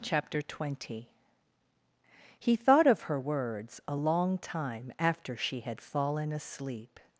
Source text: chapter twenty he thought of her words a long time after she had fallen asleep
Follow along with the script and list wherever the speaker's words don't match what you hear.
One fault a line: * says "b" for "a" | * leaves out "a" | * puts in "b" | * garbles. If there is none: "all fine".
all fine